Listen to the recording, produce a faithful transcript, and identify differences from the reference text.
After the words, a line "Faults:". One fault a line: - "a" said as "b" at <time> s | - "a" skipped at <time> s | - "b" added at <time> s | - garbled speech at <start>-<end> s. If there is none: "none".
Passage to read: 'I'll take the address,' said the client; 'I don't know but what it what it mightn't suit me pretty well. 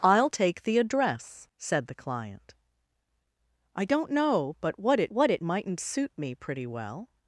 'I'll take the address,' said the client; 'I don't know but what it what it mightn't suit me pretty well.
Faults:
none